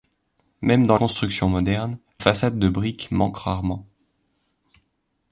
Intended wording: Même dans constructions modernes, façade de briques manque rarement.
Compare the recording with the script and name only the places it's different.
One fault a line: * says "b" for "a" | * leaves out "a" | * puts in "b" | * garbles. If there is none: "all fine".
all fine